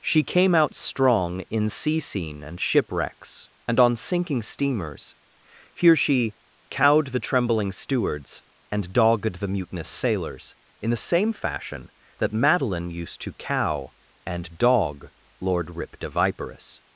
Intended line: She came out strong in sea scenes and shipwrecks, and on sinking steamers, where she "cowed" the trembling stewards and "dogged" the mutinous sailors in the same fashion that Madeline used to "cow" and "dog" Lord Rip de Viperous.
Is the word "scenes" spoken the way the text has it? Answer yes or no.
no